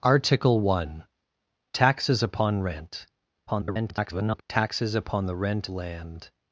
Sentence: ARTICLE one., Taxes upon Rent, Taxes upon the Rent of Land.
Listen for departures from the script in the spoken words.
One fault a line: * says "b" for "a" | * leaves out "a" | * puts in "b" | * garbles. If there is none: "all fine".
* garbles
* leaves out "of"